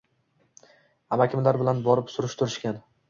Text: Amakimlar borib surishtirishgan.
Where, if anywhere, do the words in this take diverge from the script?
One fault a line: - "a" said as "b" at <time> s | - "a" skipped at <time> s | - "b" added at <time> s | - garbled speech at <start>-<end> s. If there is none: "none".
- "bilan" added at 1.6 s